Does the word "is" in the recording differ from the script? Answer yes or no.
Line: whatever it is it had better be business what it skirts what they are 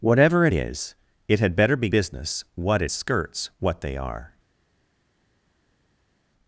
no